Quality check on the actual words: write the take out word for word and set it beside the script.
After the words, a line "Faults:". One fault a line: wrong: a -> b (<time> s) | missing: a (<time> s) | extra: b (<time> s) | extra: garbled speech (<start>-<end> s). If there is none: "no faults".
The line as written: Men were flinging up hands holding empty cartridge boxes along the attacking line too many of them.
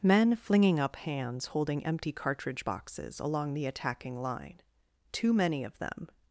Men flinging up hands holding empty cartridge boxes along the attacking line too many of them.
Faults:
missing: were (0.3 s)